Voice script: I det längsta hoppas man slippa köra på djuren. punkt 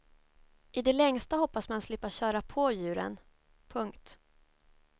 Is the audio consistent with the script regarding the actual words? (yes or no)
yes